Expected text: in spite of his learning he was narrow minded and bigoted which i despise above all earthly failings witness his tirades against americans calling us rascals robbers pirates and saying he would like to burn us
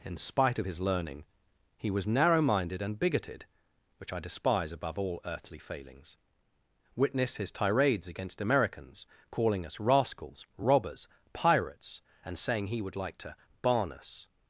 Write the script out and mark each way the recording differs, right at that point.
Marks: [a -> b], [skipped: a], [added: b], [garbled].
in spite of his learning he was narrow minded and bigoted which i despise above all earthly failings witness his tirades against americans calling us rascals robbers pirates and saying he would like to [burn -> barn] us